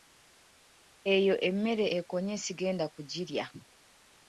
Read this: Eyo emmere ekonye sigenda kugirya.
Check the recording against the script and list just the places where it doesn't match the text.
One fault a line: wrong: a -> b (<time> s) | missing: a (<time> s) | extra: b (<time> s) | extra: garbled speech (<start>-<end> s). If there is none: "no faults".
no faults